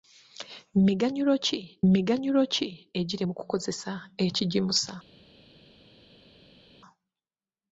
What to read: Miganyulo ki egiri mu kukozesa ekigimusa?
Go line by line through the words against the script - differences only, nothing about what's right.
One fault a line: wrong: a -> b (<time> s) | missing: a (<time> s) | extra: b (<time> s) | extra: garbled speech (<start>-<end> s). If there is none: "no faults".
extra: miganyulo ki (1.9 s)